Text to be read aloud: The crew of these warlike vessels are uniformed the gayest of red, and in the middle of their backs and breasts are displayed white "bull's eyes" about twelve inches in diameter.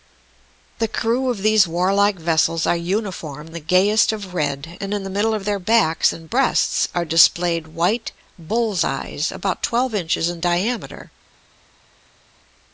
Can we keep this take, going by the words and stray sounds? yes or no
yes